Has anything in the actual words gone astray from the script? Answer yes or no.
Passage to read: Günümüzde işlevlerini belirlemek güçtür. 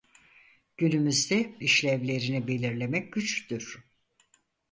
no